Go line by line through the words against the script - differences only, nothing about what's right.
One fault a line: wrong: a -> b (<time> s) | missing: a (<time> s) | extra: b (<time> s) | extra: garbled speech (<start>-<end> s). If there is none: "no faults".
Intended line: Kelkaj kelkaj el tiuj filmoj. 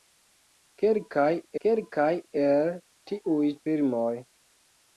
no faults